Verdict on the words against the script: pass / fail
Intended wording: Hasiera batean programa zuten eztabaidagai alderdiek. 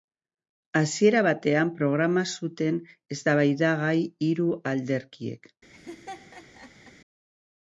fail